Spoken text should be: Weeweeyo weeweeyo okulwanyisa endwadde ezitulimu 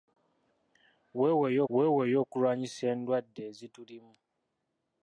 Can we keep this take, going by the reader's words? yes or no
yes